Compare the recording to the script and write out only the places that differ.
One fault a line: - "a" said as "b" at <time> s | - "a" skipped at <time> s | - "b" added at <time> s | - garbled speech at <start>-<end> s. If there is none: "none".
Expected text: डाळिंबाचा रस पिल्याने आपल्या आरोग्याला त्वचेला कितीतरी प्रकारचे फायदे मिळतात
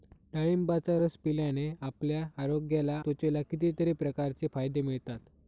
none